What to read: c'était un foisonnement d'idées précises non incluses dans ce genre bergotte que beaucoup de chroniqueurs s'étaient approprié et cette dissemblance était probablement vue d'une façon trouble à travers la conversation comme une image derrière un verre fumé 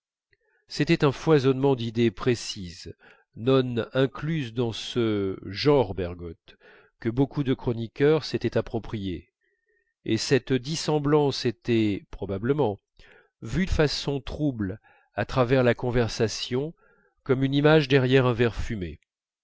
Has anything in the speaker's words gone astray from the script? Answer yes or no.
yes